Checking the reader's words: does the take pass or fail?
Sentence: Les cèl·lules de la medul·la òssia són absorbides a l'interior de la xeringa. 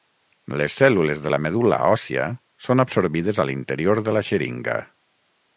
pass